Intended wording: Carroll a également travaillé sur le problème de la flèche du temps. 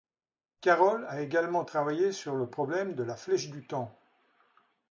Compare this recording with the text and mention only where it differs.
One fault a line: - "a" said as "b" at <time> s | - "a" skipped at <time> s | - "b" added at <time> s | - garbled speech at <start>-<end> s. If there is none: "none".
none